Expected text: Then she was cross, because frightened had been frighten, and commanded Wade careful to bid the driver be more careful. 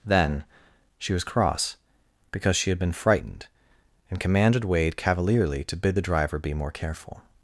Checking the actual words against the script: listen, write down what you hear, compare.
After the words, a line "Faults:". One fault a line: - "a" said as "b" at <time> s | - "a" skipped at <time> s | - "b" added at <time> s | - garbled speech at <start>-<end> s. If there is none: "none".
Then she was cross, because she had been frightened, and commanded Wade cavalierly to bid the driver be more careful.
Faults:
- "frightened" said as "she" at 2.5 s
- "frighten" said as "frightened" at 2.9 s
- "careful" said as "cavalierly" at 5.0 s